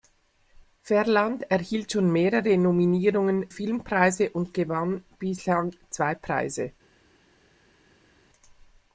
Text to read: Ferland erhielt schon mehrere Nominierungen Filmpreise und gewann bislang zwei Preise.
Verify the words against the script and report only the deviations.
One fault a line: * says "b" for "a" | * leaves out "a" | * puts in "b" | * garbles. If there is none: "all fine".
all fine